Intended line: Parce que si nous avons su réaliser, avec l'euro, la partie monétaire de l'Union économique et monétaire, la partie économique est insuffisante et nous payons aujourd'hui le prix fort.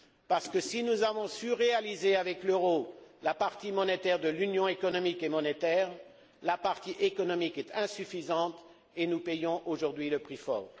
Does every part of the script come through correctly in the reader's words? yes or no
yes